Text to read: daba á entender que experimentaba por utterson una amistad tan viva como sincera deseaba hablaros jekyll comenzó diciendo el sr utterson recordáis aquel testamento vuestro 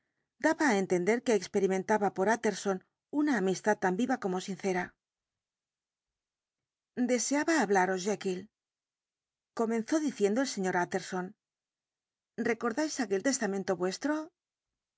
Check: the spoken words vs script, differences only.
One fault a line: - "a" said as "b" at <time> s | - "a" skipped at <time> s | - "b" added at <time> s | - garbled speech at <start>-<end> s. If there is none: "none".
none